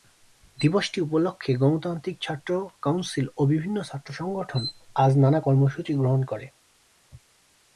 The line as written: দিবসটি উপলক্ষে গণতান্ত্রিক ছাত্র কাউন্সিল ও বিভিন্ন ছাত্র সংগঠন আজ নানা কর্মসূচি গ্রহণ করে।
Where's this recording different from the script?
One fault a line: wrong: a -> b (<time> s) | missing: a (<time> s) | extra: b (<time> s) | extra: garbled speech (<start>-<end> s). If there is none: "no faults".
no faults